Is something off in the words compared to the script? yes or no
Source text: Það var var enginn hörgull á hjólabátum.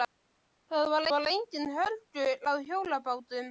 no